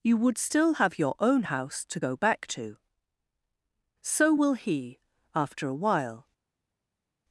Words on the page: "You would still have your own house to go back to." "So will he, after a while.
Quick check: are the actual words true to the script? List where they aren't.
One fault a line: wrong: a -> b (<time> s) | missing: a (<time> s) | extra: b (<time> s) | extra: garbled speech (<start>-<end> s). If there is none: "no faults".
no faults